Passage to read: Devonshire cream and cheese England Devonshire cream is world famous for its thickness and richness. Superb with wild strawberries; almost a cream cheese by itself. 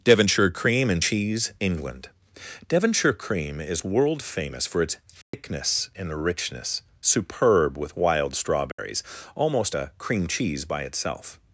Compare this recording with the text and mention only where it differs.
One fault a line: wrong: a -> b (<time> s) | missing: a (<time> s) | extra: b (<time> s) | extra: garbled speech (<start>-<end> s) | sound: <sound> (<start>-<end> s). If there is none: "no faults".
sound: dropout (5.2-5.3 s)
sound: dropout (8.7-8.8 s)